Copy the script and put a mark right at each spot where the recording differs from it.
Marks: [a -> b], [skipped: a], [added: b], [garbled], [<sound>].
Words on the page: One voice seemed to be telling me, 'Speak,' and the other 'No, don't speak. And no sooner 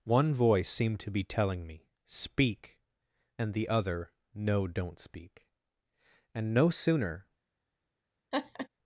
One voice seemed to be telling me, 'Speak,' and the other 'No, don't speak. And no sooner [laugh]